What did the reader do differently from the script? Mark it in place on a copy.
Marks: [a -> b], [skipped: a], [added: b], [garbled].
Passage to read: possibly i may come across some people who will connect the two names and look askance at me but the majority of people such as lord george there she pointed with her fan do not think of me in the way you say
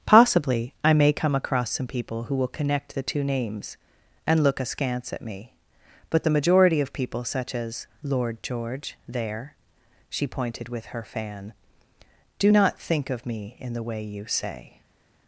possibly i may come across some people who will connect the two names and look askance at me but the majority of people such as lord george there she pointed with her fan do not think of me in the way you say